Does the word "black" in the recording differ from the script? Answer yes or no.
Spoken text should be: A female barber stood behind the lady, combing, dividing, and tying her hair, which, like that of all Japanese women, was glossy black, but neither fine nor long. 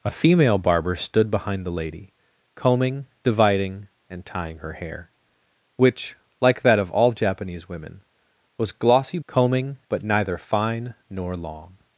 yes